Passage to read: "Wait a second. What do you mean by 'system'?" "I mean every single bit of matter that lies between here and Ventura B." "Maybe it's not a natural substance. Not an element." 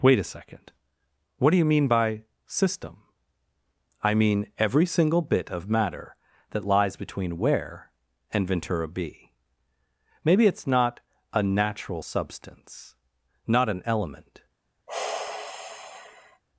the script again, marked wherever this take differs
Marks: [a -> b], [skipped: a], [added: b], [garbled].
"Wait a second. What do you mean by 'system'?" "I mean every single bit of matter that lies between [here -> where] and Ventura B." "Maybe it's not a natural substance. Not an element."